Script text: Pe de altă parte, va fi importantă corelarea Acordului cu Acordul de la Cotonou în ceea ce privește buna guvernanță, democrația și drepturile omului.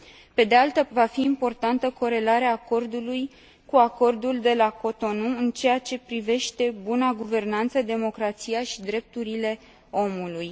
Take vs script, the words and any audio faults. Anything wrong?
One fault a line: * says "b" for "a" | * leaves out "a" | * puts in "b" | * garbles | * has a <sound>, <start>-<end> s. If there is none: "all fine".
* leaves out "parte"